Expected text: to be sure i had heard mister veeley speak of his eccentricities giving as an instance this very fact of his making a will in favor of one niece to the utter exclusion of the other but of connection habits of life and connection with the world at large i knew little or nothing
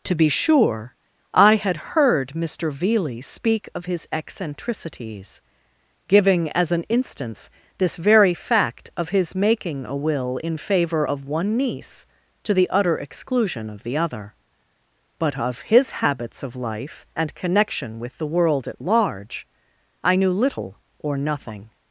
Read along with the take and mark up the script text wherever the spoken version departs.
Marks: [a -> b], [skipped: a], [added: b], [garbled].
to be sure i had heard mister veeley speak of his eccentricities giving as an instance this very fact of his making a will in favor of one niece to the utter exclusion of the other but of [connection -> his] habits of life and connection with the world at large i knew little or nothing